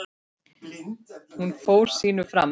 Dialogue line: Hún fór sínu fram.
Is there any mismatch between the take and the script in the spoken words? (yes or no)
no